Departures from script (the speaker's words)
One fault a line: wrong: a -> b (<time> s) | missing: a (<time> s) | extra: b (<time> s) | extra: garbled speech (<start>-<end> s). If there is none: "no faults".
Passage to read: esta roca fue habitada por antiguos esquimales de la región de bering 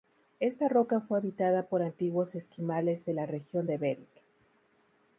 no faults